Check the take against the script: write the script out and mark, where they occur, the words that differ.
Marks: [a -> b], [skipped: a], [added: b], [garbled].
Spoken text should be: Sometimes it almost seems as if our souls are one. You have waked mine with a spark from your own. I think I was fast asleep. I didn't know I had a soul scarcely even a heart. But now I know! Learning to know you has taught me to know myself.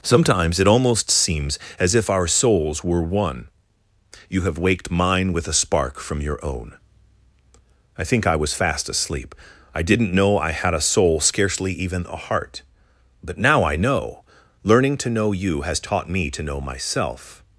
Sometimes it almost seems as if our souls [are -> were] one. You have waked mine with a spark from your own. I think I was fast asleep. I didn't know I had a soul scarcely even a heart. But now I know! Learning to know you has taught me to know myself.